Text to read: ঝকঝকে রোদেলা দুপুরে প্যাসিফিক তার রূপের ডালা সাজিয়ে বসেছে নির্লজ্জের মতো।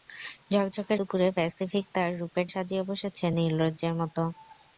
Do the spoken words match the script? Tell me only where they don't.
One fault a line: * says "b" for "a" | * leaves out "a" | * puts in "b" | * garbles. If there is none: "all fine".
* leaves out "রোদেলা"
* leaves out "ডালা"